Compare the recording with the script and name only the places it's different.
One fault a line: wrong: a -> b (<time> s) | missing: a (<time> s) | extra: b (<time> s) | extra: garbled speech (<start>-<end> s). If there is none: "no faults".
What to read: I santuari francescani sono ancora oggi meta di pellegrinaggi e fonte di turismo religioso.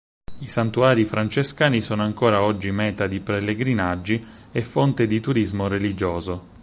no faults